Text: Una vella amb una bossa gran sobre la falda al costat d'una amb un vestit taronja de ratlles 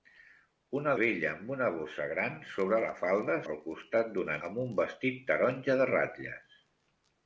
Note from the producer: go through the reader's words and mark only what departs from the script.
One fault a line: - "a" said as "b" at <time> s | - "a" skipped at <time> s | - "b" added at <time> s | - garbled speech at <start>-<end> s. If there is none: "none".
none